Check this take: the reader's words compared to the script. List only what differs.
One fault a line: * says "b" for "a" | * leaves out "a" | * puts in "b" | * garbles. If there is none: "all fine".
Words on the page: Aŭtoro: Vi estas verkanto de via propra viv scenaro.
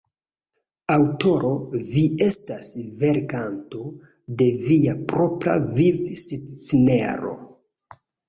all fine